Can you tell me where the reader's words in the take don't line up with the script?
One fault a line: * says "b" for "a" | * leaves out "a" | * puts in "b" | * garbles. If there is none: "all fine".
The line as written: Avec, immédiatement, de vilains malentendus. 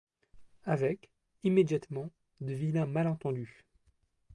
all fine